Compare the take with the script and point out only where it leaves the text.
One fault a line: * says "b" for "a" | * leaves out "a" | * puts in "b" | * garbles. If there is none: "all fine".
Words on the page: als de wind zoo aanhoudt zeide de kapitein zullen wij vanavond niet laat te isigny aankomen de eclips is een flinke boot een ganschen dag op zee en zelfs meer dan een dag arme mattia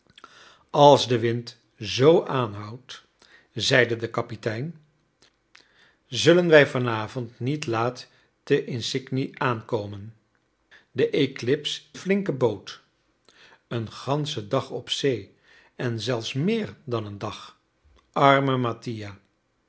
* leaves out "is een"